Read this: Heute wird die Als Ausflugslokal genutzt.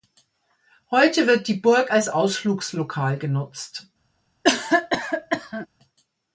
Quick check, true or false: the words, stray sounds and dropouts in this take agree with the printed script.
false